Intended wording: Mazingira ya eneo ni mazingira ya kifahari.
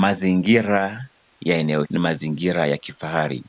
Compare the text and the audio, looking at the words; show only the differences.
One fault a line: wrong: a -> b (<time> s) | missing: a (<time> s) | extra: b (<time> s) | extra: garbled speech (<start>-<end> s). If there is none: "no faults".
no faults